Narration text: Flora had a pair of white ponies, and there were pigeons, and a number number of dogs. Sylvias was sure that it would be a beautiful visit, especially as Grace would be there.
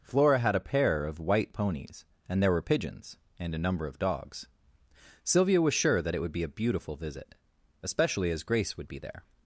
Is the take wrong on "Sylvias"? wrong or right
wrong